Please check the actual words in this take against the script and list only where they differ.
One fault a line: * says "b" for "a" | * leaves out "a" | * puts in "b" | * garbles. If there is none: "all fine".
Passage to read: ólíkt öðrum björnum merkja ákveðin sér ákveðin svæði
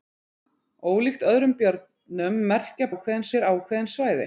all fine